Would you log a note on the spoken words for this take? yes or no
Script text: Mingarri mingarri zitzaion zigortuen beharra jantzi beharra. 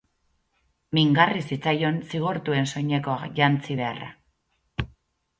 yes